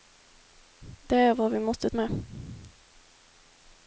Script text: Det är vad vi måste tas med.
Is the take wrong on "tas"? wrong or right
wrong